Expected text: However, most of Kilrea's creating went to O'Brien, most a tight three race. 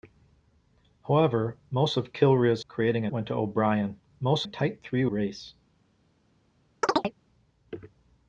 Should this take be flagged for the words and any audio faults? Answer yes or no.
yes